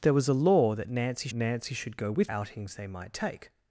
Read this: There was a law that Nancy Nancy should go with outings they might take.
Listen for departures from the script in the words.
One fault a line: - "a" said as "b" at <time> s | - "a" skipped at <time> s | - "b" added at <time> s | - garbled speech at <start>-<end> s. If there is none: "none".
none